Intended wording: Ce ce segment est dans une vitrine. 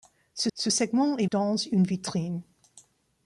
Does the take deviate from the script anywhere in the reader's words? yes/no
no